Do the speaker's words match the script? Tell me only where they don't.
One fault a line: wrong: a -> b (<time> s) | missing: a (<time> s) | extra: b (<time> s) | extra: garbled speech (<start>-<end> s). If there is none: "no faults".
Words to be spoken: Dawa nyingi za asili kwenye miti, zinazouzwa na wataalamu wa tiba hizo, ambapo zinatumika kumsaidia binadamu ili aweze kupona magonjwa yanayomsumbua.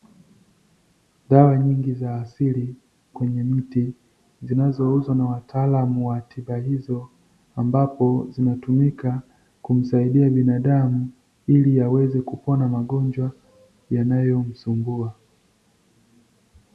no faults